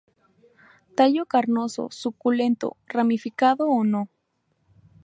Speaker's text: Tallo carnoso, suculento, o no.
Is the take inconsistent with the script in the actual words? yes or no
yes